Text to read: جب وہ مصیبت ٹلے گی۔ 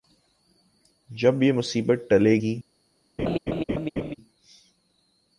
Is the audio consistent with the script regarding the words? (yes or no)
no